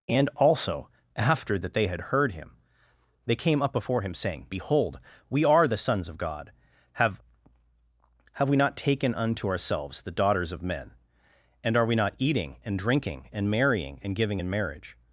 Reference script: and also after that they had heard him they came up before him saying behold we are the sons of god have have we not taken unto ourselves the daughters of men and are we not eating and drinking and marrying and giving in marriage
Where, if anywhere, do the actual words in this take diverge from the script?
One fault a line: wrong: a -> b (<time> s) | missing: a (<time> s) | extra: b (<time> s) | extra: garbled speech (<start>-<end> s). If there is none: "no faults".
no faults